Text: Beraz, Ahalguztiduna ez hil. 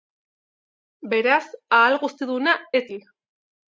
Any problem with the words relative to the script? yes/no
no